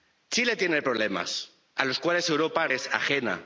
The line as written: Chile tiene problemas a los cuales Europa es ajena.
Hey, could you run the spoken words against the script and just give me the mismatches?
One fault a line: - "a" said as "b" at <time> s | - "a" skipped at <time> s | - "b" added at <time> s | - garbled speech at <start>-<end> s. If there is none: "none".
none